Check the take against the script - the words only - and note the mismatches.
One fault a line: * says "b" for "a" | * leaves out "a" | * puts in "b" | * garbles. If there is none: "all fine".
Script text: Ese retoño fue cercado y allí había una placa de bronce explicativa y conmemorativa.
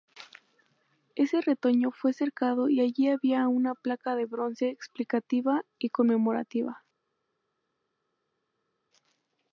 all fine